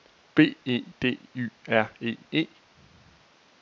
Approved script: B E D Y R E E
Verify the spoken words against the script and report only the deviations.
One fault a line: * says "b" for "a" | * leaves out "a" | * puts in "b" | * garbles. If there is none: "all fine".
all fine